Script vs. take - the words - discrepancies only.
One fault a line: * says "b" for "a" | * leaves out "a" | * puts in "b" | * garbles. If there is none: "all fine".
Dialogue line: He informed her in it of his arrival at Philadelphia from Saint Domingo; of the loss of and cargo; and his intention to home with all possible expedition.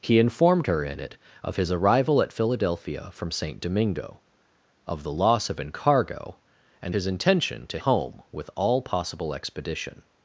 all fine